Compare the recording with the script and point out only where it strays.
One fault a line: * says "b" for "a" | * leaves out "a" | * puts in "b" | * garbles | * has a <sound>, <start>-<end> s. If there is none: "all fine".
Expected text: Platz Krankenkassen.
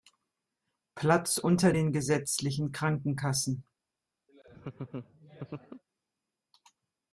* puts in "unter den gesetzlichen"
* has a laugh, 4.3-5.8 s